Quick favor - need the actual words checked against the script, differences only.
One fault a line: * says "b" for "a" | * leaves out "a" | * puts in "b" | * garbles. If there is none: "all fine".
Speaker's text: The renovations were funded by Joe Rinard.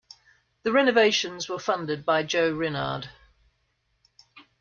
all fine